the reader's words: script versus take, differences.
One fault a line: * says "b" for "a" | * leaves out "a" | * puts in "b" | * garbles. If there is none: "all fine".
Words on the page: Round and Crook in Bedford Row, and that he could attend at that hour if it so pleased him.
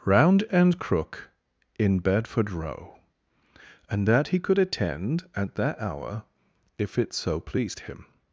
all fine